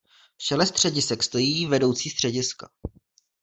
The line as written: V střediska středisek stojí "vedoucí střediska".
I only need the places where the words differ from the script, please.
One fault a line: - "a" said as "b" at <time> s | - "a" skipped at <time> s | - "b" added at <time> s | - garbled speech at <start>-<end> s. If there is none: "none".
- "střediska" said as "čele" at 0.4 s